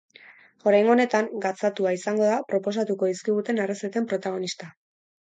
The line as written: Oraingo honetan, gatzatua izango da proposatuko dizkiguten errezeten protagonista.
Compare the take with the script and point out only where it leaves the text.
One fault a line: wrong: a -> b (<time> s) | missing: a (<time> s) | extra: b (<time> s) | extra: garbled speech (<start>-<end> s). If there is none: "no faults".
no faults